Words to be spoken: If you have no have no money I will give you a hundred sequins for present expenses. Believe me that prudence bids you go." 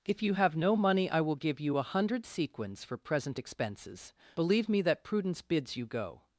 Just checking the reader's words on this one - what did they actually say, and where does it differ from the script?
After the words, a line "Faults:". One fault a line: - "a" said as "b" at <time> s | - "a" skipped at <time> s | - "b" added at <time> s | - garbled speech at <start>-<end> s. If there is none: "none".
If you have no money I will give you a hundred sequins for present expenses. Believe me that prudence bids you go."
Faults:
- "have no" skipped at 0.8 s